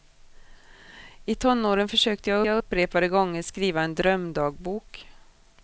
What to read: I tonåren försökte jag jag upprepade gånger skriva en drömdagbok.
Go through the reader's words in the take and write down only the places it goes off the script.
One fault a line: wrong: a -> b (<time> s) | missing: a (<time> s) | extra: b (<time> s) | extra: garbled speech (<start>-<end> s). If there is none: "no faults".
no faults